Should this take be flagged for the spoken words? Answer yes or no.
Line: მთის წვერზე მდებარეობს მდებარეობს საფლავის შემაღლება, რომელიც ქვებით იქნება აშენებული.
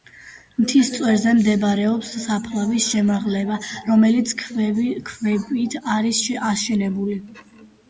yes